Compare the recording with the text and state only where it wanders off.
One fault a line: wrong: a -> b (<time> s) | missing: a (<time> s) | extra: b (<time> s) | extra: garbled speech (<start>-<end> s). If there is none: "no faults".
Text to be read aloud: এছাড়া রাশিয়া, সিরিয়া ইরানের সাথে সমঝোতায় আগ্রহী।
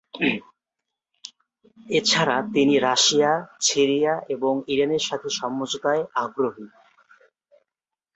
extra: তিনি (2.5 s)
extra: এবং (4.3 s)